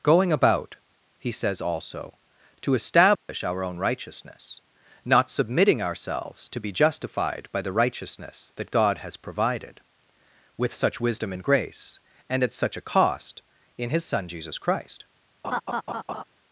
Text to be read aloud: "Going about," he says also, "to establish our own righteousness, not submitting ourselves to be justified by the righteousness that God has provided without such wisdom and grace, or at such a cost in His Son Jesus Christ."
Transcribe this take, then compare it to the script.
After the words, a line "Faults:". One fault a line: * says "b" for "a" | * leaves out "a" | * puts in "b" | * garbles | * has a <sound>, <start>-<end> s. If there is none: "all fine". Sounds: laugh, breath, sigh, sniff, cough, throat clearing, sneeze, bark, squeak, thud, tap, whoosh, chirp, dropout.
"Going about," he says also, "to establish our own righteousness, not submitting ourselves to be justified by the righteousness that God has provided with such wisdom and grace, and at such a cost in His Son Jesus Christ."
Faults:
* has a dropout, 3.2-3.3 s
* says "with" for "without"
* says "and" for "or"
* has a laugh, 15.4-16.2 s